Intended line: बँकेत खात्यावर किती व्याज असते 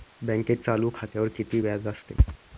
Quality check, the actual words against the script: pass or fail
fail